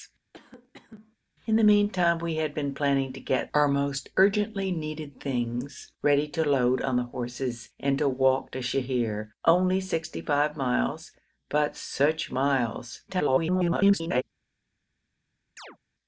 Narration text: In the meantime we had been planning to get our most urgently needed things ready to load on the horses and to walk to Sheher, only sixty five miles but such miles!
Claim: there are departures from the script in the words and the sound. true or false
true